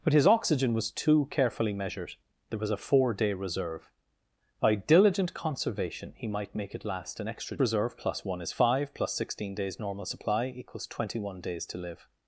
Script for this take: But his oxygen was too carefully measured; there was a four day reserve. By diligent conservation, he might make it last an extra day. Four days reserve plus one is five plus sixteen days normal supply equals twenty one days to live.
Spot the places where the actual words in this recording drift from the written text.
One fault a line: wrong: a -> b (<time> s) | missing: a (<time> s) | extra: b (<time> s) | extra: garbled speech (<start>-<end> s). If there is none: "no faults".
missing: day Four days (7.6 s)